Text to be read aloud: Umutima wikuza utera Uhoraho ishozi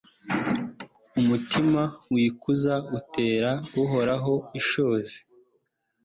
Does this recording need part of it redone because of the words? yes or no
no